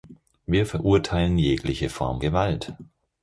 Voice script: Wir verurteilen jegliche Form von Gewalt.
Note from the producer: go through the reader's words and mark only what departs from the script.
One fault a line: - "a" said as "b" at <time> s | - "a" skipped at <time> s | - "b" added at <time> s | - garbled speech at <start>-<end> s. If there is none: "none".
- "von" skipped at 2.2 s